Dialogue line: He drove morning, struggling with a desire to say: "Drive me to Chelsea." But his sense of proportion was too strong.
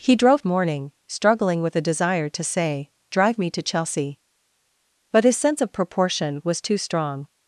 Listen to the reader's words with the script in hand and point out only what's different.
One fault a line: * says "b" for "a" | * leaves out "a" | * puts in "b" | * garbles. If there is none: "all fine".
all fine